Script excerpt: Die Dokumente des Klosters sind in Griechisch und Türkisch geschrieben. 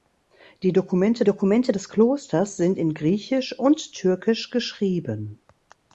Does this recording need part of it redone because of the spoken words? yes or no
yes